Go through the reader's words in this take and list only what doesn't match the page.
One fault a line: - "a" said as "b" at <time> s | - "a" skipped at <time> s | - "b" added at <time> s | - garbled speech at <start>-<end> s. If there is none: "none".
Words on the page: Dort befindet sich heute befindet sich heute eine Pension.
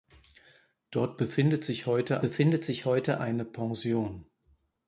none